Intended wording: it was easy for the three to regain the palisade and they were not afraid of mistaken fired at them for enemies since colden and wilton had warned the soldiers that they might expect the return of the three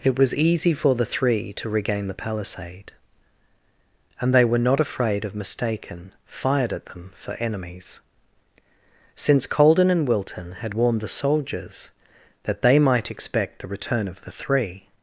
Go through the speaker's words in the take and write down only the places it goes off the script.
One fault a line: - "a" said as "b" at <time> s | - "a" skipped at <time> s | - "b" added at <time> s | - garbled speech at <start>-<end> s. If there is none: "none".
none